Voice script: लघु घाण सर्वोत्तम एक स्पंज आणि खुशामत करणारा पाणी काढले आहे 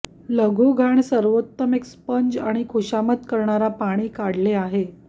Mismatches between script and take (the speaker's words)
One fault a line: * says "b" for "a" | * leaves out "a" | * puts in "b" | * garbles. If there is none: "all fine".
all fine